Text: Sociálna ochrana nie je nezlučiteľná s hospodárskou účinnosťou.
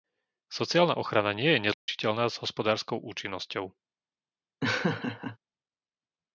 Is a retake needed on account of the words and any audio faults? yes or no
yes